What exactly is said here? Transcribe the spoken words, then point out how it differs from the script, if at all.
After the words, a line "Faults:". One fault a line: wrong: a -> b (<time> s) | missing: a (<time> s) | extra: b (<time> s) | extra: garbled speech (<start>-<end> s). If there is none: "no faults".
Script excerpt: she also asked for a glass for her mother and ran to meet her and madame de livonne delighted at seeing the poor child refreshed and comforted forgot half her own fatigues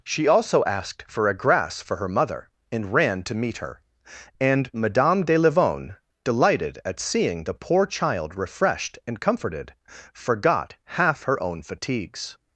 she also asked for a grass for her mother and ran to meet her and madame de livonne delighted at seeing the poor child refreshed and comforted forgot half her own fatigues
Faults:
wrong: glass -> grass (1.4 s)